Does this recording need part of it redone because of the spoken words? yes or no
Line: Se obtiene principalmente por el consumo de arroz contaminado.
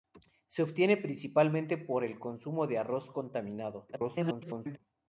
yes